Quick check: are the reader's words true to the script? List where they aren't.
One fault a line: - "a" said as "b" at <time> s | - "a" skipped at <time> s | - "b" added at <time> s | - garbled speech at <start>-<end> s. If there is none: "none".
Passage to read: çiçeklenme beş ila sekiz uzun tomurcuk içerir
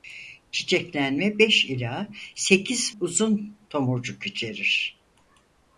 none